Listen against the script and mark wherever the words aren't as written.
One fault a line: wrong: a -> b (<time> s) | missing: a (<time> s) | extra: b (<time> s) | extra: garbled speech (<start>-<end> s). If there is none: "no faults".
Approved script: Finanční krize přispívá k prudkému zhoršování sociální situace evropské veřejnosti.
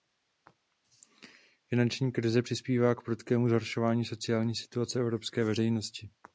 no faults